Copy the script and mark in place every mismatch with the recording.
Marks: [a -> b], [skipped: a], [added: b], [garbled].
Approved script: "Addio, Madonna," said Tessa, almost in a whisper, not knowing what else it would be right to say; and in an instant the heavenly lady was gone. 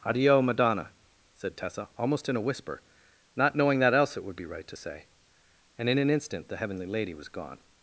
"Addio, Madonna," said Tessa, almost in a whisper, not knowing [what -> that] else it would be right to say; and in an instant the heavenly lady was gone.